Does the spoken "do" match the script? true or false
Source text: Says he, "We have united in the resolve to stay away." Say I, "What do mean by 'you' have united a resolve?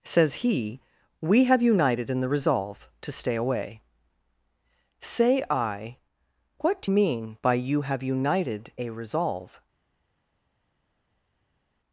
true